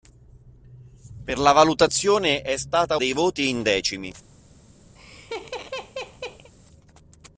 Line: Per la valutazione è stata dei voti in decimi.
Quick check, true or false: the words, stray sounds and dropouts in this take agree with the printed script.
false